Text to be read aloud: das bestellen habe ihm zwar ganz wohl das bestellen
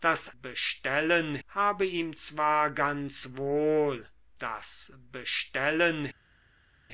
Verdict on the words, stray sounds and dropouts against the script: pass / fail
pass